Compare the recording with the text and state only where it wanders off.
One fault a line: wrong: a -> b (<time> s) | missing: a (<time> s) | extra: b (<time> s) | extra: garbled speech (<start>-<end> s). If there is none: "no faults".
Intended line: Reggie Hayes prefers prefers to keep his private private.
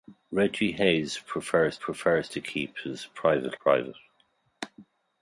no faults